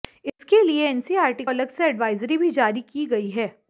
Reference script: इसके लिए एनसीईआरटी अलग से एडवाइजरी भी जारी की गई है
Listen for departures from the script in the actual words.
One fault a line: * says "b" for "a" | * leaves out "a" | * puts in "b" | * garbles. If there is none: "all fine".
all fine